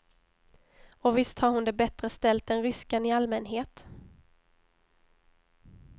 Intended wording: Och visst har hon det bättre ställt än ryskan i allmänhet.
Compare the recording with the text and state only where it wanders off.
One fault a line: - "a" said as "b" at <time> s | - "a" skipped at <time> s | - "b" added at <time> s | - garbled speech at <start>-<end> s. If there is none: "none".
none